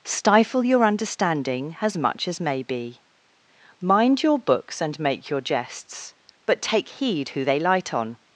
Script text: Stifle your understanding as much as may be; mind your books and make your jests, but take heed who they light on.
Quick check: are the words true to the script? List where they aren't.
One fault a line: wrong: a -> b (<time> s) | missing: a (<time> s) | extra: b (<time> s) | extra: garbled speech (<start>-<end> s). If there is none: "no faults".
no faults